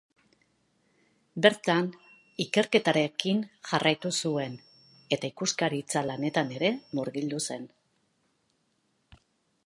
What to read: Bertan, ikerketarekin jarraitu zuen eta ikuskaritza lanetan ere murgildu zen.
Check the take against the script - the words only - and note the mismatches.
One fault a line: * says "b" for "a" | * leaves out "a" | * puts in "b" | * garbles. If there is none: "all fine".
all fine